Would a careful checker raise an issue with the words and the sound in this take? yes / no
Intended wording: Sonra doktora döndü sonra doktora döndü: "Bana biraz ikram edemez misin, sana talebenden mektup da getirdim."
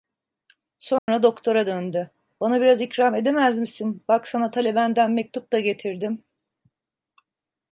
yes